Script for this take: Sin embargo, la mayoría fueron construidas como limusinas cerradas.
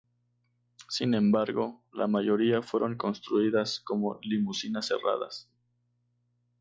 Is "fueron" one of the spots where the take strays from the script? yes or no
no